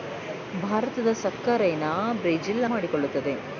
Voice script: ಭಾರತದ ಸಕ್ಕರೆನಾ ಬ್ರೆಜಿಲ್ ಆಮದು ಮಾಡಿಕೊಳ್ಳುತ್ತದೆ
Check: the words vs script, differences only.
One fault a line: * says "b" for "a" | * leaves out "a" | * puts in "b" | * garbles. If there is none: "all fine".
* leaves out "ಆಮದು"